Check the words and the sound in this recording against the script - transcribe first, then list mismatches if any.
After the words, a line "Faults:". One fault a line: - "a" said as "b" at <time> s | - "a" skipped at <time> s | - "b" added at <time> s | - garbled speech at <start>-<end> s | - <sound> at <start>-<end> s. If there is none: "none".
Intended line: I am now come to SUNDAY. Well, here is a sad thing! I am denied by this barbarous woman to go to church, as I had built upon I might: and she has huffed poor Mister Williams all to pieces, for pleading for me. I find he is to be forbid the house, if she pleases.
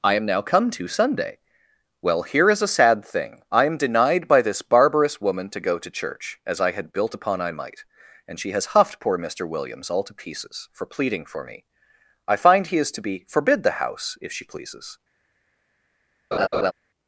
I am now come to SUNDAY. Well, here is a sad thing! I am denied by this barbarous woman to go to church, as I had built upon I might: and she has huffed poor Mister Williams all to pieces, for pleading for me. I find he is to be forbid the house, if she pleases.
Faults:
- laugh at 16.3-16.7 s